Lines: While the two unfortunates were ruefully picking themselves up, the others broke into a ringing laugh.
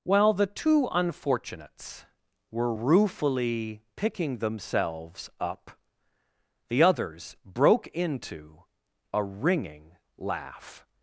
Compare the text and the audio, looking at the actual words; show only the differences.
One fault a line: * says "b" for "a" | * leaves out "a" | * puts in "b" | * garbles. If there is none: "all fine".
all fine